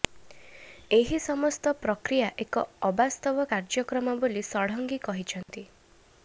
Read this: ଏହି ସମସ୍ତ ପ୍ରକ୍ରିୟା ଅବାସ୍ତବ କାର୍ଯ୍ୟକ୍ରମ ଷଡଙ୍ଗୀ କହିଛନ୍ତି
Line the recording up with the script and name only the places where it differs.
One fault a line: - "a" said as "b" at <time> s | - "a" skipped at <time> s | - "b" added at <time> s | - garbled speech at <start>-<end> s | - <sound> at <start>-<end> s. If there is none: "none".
- "ଏକ" added at 2.5 s
- "ବୋଲି" added at 4.2 s
- dropout at 5.4-5.5 s